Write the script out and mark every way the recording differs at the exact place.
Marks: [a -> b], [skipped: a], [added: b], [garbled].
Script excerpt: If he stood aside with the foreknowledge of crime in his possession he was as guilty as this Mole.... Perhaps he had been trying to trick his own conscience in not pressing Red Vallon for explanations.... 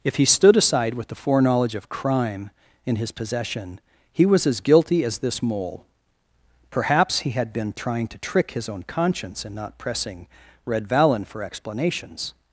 If he stood aside with the foreknowledge of crime in his possession he was as guilty as this Mole.... Perhaps he had been trying to trick his own conscience in not pressing Red Vallon for explanations....